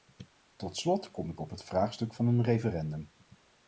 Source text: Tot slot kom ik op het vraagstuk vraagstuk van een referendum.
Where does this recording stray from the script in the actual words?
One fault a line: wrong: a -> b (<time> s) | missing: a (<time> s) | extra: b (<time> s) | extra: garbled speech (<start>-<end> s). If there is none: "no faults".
missing: vraagstuk (2.1 s)